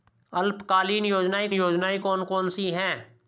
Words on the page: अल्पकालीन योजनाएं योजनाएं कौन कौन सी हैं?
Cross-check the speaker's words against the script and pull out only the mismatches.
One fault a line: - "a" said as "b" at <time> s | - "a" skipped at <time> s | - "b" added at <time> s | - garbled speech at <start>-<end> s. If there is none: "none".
none